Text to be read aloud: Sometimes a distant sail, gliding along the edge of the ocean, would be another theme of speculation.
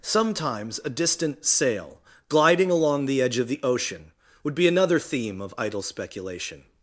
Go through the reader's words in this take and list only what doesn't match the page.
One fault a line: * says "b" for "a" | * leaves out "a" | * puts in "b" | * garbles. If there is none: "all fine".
* puts in "idle"